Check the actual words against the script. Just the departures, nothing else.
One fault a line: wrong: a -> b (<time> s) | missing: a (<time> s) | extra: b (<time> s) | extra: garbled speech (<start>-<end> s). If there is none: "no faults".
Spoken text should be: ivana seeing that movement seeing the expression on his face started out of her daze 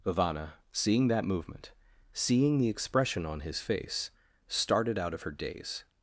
no faults